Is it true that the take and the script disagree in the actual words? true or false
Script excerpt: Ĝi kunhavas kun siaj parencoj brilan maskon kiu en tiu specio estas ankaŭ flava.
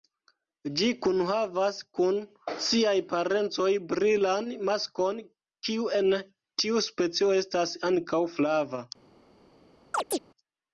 false